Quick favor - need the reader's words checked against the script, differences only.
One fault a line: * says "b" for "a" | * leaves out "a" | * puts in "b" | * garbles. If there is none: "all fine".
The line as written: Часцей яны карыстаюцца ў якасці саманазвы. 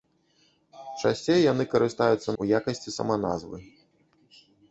all fine